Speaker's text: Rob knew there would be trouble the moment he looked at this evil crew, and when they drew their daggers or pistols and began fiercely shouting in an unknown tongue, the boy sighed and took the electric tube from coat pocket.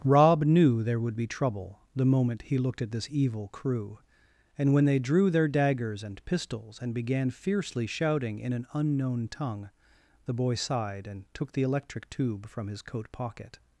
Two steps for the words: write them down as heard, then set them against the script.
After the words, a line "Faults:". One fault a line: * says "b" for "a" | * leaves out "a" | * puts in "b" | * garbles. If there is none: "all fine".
Rob knew there would be trouble the moment he looked at this evil crew, and when they drew their daggers and pistols and began fiercely shouting in an unknown tongue, the boy sighed and took the electric tube from his coat pocket.
Faults:
* says "and" for "or"
* puts in "his"